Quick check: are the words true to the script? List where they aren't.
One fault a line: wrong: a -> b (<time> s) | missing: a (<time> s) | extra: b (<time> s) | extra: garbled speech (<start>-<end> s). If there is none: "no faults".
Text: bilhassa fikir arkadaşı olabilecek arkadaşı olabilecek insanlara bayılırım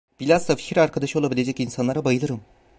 missing: arkadaşı olabilecek (1.6 s)